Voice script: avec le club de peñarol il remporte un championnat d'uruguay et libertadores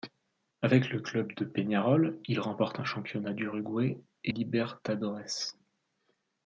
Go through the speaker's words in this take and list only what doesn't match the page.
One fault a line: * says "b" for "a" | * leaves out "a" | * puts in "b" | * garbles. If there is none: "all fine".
all fine